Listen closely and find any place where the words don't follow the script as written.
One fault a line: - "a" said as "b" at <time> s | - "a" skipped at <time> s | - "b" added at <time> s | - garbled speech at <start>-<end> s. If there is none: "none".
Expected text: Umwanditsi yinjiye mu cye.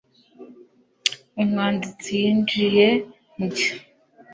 none